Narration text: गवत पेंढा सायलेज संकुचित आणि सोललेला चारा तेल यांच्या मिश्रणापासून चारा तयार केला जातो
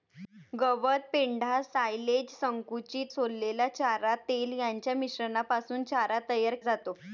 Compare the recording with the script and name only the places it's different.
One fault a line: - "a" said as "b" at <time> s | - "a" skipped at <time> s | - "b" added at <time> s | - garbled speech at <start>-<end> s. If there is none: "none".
- "आणि" skipped at 3.1 s
- "केला" skipped at 6.5 s